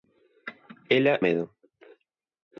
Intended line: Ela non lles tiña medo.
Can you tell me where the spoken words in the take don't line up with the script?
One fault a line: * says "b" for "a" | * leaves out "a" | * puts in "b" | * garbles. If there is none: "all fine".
* leaves out "non lles tiña"